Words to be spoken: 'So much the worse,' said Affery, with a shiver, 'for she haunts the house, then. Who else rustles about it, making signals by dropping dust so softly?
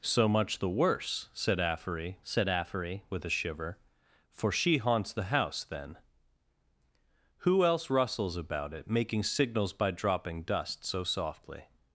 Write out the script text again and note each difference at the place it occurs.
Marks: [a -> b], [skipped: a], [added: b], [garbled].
'So much the worse,' said Affery, [added: said Affery] with a shiver, 'for she haunts the house, then. Who else rustles about it, making signals by dropping dust so softly?